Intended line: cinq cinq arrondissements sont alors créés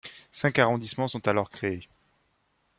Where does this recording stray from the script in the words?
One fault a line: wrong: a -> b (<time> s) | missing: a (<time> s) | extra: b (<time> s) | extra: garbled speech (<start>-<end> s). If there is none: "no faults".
missing: cinq (0.6 s)